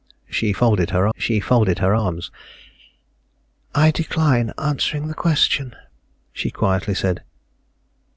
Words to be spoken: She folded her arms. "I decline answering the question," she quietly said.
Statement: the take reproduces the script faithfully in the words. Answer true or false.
false